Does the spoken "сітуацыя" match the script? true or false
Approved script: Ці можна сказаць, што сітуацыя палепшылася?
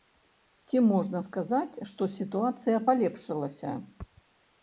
true